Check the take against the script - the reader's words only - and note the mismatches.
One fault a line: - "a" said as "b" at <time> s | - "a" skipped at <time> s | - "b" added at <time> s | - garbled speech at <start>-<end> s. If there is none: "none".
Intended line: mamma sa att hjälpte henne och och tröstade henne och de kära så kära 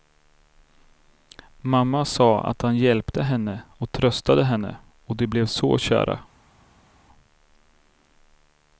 - "han" added at 2.6 s
- "och" skipped at 3.9 s
- "kära" said as "blev" at 5.3 s